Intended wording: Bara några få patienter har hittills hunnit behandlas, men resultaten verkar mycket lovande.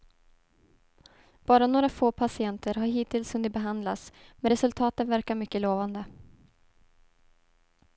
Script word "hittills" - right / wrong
right